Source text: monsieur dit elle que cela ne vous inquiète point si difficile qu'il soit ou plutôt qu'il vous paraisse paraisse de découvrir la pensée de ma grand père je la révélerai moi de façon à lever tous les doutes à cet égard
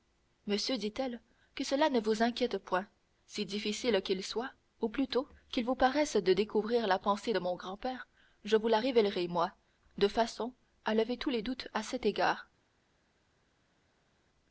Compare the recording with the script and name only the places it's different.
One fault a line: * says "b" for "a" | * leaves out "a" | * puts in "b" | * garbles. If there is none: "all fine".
* leaves out "paraisse"
* says "mon" for "ma"
* puts in "vous"